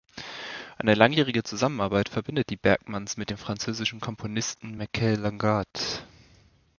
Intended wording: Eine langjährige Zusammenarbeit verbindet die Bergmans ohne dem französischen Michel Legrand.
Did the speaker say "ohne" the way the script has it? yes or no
no